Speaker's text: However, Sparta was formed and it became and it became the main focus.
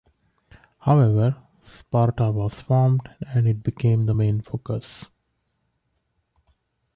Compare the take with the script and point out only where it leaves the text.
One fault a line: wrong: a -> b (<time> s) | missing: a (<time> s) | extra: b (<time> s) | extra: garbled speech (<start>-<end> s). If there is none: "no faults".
missing: and it became (4.0 s)